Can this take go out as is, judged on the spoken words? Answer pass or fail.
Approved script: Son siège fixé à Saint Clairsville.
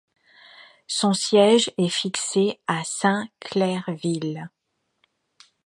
fail